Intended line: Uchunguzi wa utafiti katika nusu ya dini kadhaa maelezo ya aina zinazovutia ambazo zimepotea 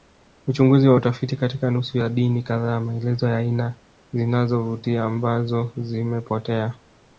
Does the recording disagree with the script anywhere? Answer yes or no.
no